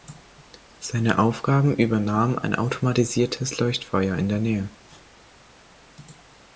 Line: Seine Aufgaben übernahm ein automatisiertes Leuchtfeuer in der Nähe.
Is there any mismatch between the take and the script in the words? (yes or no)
no